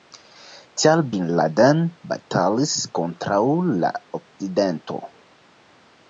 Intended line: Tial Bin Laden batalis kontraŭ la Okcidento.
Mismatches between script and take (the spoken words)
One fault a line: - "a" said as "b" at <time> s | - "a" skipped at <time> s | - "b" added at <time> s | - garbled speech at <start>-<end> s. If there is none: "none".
none